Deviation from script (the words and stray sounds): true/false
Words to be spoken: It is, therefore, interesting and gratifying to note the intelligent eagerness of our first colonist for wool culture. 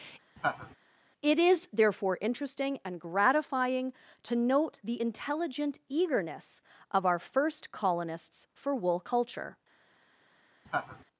true